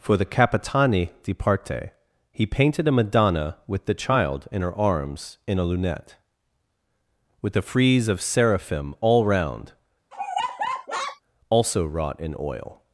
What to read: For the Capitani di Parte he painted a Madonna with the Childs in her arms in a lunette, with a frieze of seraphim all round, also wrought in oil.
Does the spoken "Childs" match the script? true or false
false